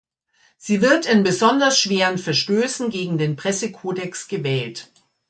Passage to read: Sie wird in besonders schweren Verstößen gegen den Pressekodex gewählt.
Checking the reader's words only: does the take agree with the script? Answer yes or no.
yes